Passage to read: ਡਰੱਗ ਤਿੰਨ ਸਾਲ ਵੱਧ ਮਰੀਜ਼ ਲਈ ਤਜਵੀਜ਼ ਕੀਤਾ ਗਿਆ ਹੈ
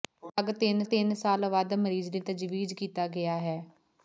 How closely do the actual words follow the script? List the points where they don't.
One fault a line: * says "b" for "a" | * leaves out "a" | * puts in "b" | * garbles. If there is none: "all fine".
* puts in "ਤਿੰਨ"